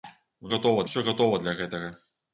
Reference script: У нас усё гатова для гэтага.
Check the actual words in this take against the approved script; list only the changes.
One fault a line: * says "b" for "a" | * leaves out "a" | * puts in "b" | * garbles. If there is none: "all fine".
* says "гатова" for "нас"